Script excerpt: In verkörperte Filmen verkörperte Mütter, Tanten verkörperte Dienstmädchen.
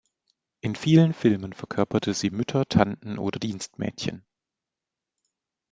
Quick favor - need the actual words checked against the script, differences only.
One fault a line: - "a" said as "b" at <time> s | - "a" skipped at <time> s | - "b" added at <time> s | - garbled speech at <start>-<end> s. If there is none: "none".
- "verkörperte" said as "vielen" at 0.7 s
- "sie" added at 2.1 s
- "verkörperte" said as "oder" at 3.2 s